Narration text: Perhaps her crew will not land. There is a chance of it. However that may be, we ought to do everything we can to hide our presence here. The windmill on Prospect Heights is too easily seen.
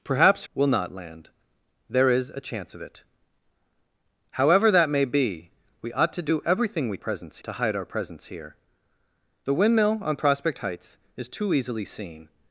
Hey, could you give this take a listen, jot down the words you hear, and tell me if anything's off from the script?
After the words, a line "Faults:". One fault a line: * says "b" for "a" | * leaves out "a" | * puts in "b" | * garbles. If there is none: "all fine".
Perhaps will not land. There is a chance of it. However that may be, we ought to do everything we presence to hide our presence here. The windmill on Prospect Heights is too easily seen.
Faults:
* leaves out "her crew"
* says "presence" for "can"